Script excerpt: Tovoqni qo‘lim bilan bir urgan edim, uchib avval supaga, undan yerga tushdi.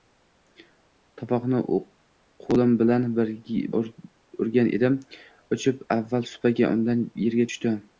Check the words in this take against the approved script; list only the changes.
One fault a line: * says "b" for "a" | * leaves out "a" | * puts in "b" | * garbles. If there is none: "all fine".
* leaves out "bir"